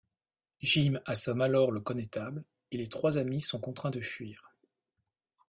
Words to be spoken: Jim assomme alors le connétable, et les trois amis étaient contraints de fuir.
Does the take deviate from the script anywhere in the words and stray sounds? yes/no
yes